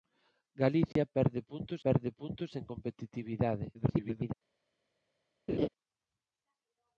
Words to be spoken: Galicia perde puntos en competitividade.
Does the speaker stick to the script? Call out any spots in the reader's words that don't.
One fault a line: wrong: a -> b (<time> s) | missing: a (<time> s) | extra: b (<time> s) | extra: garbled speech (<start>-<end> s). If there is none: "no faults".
extra: perde puntos (1.8 s)
extra: garbled speech (3.7-4.3 s)